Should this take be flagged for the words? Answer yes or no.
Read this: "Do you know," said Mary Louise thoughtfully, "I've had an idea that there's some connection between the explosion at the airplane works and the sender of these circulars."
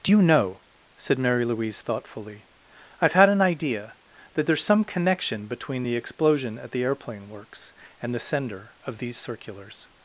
no